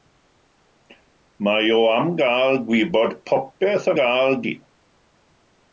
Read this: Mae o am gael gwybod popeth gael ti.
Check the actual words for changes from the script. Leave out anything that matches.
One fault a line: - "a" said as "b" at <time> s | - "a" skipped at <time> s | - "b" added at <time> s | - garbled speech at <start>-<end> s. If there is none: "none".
none